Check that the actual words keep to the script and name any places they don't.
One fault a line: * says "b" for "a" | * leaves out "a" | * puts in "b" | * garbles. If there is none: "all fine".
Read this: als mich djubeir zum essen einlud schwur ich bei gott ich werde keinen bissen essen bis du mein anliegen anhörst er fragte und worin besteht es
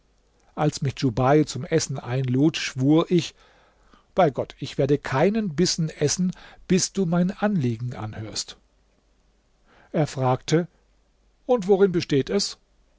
all fine